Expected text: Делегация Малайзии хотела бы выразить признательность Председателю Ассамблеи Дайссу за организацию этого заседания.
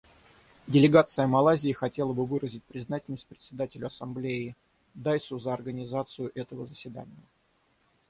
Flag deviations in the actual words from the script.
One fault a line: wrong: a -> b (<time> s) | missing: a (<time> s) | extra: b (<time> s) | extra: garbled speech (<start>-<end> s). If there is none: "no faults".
no faults